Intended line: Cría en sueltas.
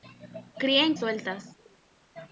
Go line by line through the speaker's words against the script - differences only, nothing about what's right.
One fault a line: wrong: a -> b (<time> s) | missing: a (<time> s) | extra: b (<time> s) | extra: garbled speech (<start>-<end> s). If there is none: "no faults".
no faults